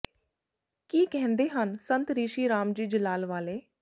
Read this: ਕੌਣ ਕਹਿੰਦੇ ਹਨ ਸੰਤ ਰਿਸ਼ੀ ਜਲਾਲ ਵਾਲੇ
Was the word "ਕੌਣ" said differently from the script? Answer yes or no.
yes